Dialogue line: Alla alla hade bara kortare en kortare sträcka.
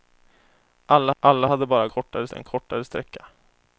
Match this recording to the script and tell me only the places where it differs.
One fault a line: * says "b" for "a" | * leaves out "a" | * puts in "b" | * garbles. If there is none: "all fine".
all fine